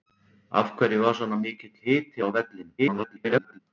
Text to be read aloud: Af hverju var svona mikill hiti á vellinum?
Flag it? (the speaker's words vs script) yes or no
yes